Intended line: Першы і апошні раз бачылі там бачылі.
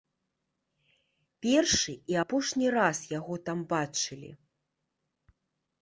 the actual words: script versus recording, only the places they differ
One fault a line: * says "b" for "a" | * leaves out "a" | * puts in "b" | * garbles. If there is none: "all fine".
* says "яго" for "бачылі"